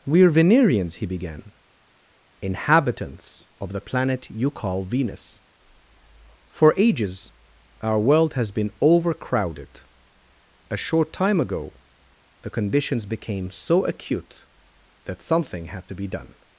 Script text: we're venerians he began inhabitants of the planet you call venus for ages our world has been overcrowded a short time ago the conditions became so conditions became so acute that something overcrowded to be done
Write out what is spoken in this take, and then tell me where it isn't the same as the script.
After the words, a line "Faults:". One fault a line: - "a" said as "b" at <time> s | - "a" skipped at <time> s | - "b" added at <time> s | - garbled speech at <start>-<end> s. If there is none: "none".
we're venerians he began inhabitants of the planet you call venus for ages our world has been overcrowded a short time ago the conditions became so acute that something had to be done
Faults:
- "conditions became so" skipped at 13.9 s
- "overcrowded" said as "had" at 15.7 s